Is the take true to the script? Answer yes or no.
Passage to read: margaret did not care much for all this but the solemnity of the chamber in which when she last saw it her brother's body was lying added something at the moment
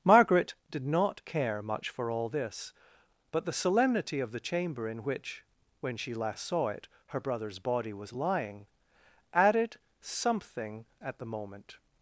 yes